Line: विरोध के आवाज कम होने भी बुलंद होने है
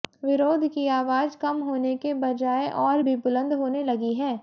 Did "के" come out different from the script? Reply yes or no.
yes